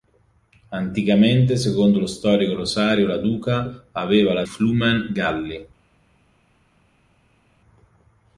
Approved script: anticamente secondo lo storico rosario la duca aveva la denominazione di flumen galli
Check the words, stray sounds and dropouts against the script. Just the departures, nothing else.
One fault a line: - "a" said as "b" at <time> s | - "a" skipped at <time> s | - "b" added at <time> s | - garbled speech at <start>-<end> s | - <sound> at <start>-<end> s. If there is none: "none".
- "denominazione di" skipped at 4.5 s